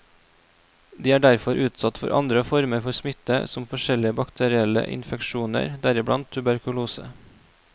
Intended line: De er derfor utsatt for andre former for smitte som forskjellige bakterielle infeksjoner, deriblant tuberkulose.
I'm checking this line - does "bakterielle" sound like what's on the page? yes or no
yes